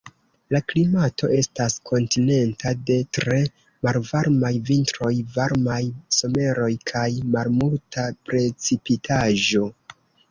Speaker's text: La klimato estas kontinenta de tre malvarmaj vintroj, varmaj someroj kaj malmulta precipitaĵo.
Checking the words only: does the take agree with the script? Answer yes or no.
yes